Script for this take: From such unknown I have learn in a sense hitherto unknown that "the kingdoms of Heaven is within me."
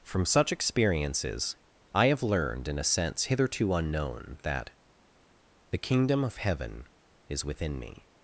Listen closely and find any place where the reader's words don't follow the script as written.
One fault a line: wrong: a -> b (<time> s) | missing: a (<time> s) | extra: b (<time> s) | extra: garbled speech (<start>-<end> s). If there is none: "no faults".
wrong: unknown -> experiences (0.5 s)
wrong: learn -> learned (2.2 s)
wrong: kingdoms -> kingdom (5.8 s)